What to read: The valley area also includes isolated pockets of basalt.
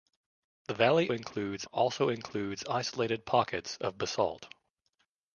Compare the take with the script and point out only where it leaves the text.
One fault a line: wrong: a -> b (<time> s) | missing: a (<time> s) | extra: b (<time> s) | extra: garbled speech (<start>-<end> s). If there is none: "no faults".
wrong: area -> includes (1.1 s)